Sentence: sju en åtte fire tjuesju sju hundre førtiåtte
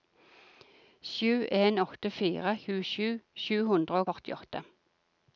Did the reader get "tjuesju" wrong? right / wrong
right